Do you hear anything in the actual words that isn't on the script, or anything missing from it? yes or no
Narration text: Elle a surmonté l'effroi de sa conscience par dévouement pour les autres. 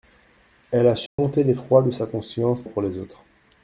yes